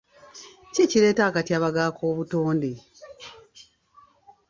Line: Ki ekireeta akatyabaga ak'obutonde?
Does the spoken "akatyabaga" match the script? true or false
true